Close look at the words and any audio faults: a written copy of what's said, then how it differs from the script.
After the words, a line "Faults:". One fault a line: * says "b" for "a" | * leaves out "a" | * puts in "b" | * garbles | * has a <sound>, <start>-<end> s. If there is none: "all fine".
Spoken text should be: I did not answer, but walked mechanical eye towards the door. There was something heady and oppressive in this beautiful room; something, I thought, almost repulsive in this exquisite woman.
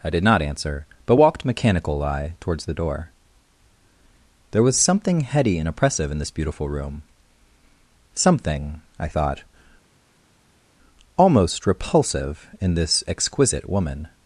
I did not answer, but walked mechanical eye towards the door. There was something heady and oppressive in this beautiful room; something, I thought, almost repulsive in this exquisite woman.
Faults:
all fine